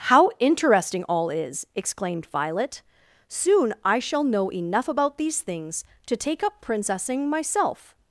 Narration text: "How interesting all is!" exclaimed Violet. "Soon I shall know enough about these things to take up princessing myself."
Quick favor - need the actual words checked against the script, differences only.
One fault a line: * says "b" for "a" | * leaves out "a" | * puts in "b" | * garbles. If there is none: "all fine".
all fine